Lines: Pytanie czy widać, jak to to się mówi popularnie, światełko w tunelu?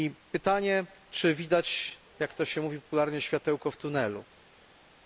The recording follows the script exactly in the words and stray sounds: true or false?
false